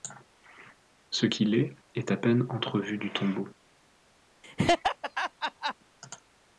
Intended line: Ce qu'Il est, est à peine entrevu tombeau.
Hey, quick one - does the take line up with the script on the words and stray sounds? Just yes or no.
no